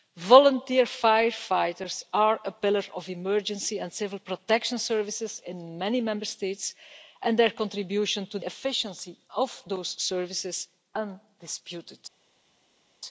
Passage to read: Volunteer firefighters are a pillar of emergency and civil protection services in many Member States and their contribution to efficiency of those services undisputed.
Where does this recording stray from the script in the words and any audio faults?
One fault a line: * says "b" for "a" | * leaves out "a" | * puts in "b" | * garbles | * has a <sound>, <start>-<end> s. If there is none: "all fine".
all fine